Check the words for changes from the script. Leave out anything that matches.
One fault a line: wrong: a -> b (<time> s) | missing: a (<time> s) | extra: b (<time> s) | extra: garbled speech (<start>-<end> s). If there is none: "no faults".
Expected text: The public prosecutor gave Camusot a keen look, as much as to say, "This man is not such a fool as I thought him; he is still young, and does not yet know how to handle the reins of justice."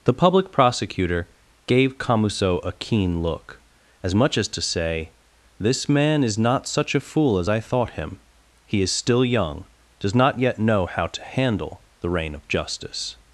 missing: and (9.7 s)
wrong: reins -> rein (12.1 s)